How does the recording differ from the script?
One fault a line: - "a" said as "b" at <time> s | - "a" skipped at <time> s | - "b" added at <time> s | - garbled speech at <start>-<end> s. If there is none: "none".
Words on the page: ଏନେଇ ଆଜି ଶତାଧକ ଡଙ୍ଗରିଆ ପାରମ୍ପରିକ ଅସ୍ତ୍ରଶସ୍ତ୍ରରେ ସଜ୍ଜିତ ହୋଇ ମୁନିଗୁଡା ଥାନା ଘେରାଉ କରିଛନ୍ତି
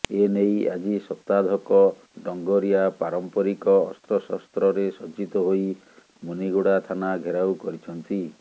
none